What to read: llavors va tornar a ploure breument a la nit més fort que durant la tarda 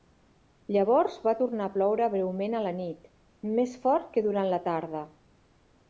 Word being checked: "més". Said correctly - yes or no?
yes